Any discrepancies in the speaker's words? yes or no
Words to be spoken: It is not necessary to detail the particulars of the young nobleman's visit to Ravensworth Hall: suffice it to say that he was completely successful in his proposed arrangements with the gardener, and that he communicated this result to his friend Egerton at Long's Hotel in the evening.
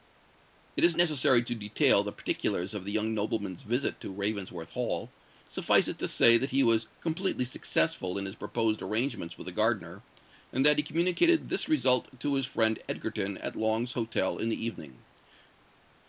yes